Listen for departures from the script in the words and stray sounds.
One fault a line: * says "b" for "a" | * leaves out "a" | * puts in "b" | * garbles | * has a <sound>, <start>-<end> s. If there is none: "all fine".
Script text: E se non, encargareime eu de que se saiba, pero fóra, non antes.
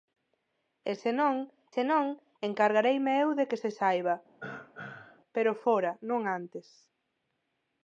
* puts in "se non"
* has a throat clearing, 4.4-5.2 s